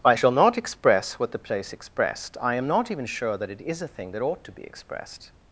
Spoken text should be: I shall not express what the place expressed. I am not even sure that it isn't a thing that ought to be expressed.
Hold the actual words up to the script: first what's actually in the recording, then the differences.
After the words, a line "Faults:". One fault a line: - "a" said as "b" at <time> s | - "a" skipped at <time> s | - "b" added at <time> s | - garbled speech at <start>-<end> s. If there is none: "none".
I shall not express what the place expressed. I am not even sure that it is a thing that ought to be expressed.
Faults:
- "isn't" said as "is" at 3.6 s